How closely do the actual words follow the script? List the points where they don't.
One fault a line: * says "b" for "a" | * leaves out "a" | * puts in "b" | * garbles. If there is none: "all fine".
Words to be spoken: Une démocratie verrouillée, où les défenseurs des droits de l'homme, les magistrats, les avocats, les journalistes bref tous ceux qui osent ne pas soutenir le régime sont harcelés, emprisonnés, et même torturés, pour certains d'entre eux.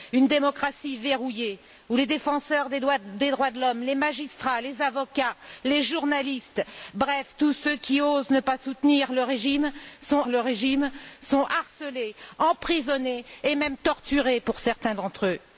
* puts in "le régime sont"